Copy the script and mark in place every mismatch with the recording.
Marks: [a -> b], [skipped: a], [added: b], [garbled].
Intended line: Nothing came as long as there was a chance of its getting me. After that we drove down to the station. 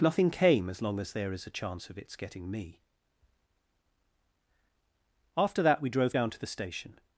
Nothing came as long as there [was -> is] a chance of its getting me. After that we drove down to the station.